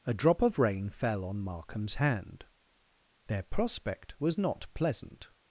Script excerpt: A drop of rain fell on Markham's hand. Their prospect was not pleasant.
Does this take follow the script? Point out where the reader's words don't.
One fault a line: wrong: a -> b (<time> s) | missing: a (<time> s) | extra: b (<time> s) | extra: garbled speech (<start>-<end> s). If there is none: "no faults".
no faults